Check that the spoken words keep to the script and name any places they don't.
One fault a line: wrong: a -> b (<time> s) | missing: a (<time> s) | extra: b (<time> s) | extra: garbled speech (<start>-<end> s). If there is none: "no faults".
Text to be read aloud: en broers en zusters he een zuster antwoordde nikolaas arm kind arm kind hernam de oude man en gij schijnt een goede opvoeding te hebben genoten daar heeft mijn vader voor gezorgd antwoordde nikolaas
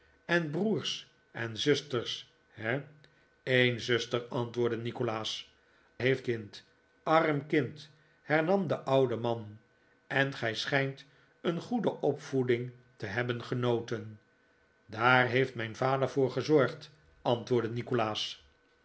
wrong: arm -> heeft (6.0 s)